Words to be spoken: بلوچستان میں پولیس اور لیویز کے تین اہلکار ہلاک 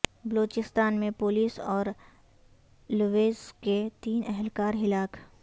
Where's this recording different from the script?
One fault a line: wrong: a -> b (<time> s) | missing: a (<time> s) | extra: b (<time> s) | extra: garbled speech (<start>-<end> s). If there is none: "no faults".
no faults